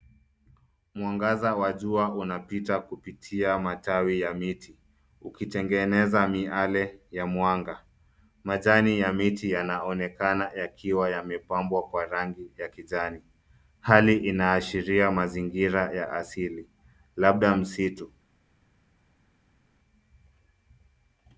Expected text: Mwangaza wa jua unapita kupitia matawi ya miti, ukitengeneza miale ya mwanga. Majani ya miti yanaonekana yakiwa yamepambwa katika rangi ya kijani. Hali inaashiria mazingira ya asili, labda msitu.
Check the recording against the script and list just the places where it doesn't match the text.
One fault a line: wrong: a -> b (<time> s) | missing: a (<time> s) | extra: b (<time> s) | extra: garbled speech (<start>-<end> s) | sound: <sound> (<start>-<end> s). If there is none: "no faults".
wrong: katika -> kwa (11.9 s)